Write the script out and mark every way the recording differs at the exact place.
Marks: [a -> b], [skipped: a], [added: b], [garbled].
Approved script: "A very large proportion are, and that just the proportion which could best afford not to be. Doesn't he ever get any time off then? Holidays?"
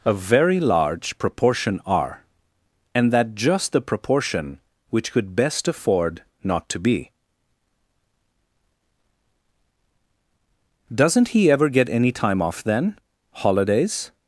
"A very large proportion are, and that just the proportion which could best afford not to be. Doesn't he ever get any time off then? Holidays?"